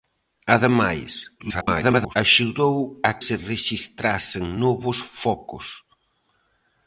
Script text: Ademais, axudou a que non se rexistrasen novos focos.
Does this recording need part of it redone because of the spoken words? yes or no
yes